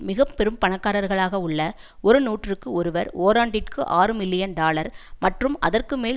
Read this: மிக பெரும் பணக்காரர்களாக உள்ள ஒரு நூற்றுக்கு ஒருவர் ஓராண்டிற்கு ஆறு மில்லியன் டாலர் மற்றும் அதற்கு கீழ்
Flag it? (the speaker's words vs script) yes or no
yes